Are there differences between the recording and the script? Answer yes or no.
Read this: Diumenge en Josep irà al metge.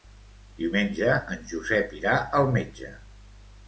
no